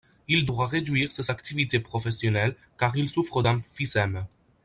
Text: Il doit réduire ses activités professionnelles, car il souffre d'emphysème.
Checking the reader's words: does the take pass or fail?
pass